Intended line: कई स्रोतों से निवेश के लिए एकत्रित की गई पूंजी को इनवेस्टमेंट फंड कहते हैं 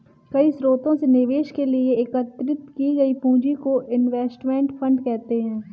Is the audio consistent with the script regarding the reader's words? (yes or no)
yes